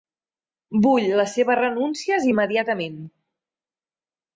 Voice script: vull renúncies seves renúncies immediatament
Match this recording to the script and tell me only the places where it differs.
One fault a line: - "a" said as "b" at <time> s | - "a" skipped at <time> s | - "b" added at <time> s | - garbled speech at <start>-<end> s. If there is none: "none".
- "renúncies" said as "les" at 1.2 s